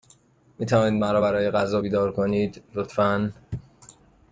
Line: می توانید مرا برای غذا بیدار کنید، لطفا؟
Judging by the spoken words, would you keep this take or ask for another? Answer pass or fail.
pass